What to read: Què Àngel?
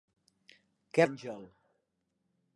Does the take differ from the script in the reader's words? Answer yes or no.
no